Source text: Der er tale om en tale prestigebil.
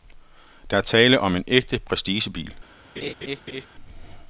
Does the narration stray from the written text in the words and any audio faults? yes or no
yes